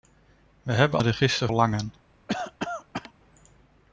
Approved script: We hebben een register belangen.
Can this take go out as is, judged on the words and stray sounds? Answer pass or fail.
fail